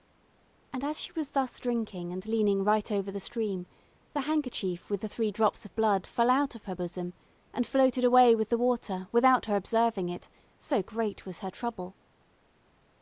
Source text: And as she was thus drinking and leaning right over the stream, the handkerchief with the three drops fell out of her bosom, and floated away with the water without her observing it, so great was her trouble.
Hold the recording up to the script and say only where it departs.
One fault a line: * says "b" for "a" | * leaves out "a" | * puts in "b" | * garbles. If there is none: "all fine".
* puts in "of blood"